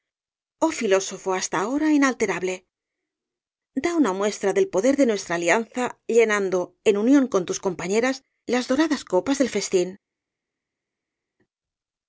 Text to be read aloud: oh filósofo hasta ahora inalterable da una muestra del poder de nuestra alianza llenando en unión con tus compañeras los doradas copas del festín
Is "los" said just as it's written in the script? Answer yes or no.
no